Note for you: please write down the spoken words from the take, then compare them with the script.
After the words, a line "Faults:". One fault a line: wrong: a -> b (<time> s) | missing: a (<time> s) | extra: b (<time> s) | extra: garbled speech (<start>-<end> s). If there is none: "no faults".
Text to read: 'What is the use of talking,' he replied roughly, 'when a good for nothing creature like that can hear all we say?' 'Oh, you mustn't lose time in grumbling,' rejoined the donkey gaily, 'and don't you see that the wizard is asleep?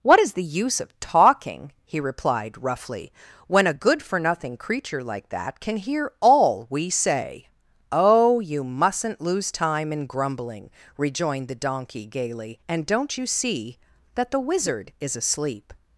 'What is the use of talking,' he replied roughly, 'when a good for nothing creature like that can hear all we say?' 'Oh, you mustn't lose time in grumbling,' rejoined the donkey gaily, 'and don't you see that the wizard is asleep?
Faults:
no faults